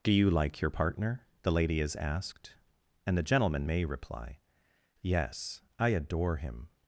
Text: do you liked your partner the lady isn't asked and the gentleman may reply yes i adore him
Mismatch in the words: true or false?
true